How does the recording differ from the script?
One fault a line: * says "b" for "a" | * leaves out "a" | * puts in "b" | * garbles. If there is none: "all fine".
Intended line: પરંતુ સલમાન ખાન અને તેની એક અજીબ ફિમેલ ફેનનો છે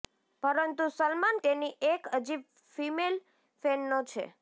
* leaves out "ખાન અને"